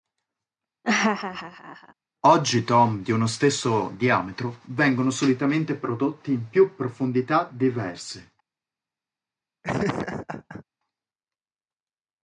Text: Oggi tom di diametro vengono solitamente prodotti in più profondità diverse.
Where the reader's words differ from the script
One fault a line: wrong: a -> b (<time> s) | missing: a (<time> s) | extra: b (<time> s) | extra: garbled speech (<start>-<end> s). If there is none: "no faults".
extra: uno stesso (3.1 s)